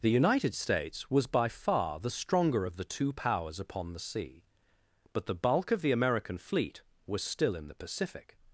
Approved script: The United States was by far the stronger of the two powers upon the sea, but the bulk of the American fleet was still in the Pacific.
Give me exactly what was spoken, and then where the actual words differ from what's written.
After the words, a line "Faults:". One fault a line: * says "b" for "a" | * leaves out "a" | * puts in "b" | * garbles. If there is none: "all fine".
The United States was by far the stronger of the two powers upon the sea, but the bulk of the American fleet was still in the Pacific.
Faults:
all fine